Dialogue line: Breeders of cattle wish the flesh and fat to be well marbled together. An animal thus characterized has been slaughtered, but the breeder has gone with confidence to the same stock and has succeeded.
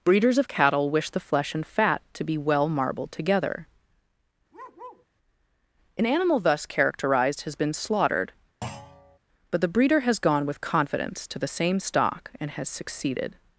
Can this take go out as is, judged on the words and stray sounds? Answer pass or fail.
fail